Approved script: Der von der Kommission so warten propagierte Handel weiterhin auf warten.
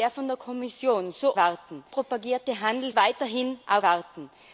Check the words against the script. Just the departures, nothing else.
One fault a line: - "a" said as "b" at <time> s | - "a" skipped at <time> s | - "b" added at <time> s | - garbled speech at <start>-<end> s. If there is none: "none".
none